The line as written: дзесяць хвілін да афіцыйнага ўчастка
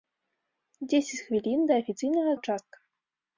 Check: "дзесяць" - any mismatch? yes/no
no